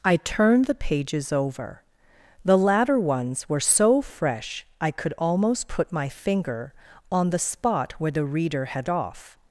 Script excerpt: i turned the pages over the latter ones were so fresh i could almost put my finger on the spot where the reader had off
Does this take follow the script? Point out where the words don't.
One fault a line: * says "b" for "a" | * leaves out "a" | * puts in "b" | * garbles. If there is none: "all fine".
all fine